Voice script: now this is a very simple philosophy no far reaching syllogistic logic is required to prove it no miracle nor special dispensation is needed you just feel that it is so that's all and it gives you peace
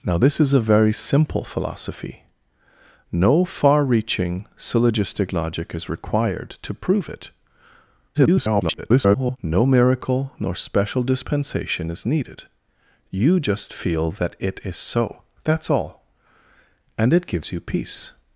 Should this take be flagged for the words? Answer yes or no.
yes